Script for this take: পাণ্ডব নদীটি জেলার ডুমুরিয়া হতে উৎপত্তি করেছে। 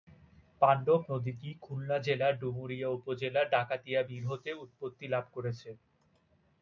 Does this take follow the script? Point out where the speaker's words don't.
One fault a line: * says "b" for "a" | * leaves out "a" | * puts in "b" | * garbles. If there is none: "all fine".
* puts in "খুলনা"
* puts in "উপজেলার ডাকাতিয়া বিল"
* puts in "লাভ"